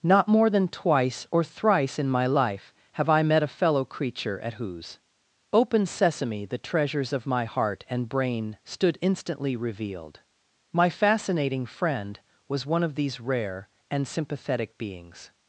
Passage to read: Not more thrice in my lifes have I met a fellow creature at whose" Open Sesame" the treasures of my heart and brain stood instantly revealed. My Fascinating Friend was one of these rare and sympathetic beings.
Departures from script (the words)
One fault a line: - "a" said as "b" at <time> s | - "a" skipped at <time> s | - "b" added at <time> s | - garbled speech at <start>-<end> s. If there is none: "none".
- "than twice or" added at 0.5 s
- "lifes" said as "life" at 2.2 s